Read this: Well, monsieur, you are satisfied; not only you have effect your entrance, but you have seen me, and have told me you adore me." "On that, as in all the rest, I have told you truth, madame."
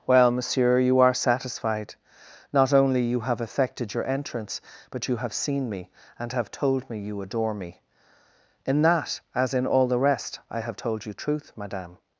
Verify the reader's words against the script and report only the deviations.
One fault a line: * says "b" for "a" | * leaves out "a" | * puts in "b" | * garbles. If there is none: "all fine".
* says "effected" for "effect"
* says "In" for "On"